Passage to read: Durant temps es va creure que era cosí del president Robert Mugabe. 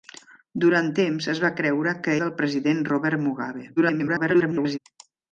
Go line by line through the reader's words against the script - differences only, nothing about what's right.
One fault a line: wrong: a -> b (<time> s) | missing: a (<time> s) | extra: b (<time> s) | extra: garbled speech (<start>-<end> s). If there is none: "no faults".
missing: era cosí (2.1 s)
extra: garbled speech (3.8-4.8 s)